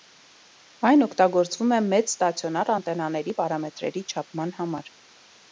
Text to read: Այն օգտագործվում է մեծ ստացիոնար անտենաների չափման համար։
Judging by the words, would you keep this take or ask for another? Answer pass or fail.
fail